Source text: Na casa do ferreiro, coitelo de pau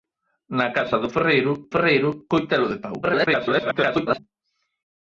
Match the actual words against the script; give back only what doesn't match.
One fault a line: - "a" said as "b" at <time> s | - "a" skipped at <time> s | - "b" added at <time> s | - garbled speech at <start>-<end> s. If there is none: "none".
- "ferreiro" added at 1.7 s
- garbled speech at 3.0-4.2 s